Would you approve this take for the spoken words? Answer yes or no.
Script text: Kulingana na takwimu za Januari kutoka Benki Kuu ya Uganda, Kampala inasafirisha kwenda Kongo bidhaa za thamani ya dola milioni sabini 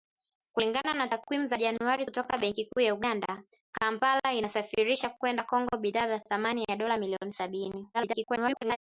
no